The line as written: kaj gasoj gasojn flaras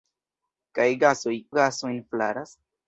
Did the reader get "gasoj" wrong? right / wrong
right